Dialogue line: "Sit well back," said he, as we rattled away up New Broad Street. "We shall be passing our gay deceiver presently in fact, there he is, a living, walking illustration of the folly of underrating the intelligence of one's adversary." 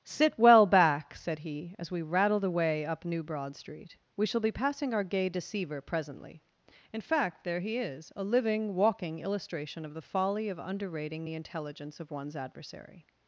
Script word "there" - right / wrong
right